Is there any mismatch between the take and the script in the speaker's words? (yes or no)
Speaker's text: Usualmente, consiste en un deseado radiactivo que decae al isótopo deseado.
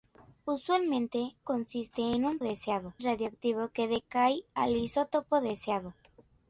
no